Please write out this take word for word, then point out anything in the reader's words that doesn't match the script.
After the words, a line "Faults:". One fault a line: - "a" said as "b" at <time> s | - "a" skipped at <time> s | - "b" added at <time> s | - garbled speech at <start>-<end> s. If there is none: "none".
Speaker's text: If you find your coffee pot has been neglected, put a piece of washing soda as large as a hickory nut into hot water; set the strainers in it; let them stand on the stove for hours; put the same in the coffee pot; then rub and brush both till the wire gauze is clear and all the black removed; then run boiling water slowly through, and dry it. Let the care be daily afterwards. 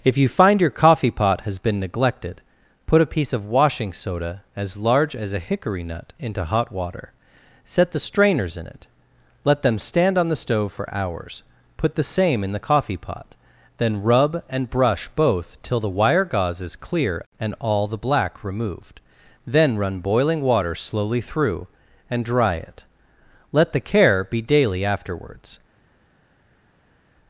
If you find your coffee pot has been neglected, put a piece of washing soda as large as a hickory nut into hot water; set the strainers in it; let them stand on the stove for hours; put the same in the coffee pot; then rub and brush both till the wire gauze is clear and all the black removed; then run boiling water slowly through, and dry it. Let the care be daily afterwards.
Faults:
none